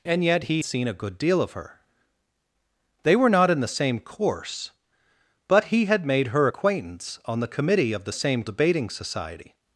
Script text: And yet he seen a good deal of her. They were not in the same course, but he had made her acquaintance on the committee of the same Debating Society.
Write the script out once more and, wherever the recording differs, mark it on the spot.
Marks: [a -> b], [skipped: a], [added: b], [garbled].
And yet he seen a good deal of her. They were not in the same course, but he had made her acquaintance on the committee of the same Debating Society.